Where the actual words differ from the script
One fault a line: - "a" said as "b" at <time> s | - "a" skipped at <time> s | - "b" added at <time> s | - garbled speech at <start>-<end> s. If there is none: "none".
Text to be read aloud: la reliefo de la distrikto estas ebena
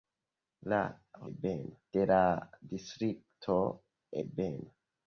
- "reliefo" said as "ebena" at 1.4 s
- "estas" skipped at 3.6 s